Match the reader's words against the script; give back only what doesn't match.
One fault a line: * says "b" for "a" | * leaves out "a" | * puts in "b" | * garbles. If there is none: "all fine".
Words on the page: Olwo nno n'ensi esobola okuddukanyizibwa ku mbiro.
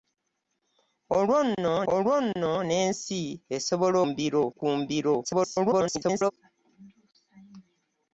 * puts in "olwo nno"
* says "mbiro" for "okuddukanyizibwa"
* garbles